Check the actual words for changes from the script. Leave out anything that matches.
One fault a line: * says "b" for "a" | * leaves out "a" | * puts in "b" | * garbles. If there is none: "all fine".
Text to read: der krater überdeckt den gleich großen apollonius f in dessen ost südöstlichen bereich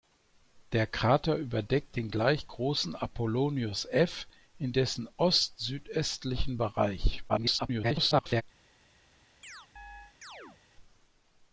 * garbles